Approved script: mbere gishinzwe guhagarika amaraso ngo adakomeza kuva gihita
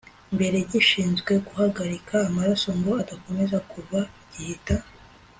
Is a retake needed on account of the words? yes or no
no